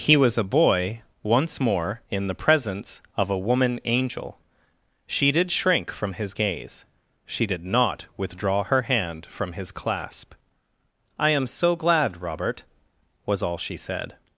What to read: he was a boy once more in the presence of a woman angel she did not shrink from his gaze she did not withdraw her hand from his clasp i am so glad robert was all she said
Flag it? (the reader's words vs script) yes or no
yes